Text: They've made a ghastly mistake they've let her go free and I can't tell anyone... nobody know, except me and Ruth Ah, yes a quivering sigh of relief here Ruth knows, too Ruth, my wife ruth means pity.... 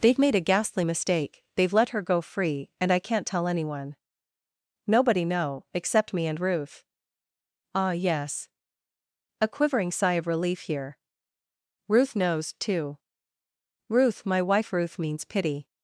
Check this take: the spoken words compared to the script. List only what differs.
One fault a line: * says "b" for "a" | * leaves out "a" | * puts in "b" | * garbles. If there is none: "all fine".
all fine